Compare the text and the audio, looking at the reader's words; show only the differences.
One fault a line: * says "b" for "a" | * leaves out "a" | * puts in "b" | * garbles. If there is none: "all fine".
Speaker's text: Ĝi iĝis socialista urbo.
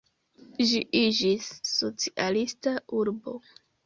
all fine